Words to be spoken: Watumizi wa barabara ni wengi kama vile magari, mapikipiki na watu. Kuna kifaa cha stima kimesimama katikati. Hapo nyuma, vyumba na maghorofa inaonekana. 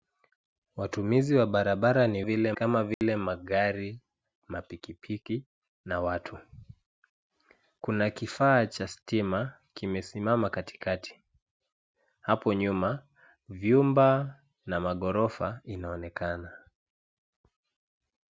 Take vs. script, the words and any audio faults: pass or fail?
fail